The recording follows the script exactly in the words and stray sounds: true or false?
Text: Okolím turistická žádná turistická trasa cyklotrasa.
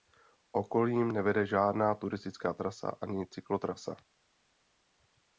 false